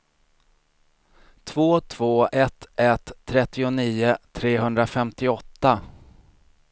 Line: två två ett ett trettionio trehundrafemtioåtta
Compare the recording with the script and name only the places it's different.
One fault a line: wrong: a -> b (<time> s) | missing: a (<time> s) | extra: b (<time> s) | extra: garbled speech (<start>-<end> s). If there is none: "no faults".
no faults